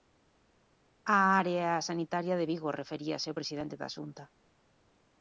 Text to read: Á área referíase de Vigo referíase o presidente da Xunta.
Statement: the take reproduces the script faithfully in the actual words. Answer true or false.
false